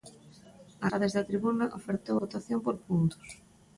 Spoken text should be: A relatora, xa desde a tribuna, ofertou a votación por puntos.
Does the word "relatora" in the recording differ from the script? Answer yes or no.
yes